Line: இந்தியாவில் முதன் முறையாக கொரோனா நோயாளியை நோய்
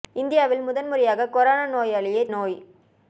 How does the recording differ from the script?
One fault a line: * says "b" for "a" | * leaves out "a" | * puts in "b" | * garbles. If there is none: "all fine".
all fine